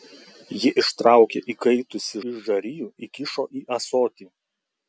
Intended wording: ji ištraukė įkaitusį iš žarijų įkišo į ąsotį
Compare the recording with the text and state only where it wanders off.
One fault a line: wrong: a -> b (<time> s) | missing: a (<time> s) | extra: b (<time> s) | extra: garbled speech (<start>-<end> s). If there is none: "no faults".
no faults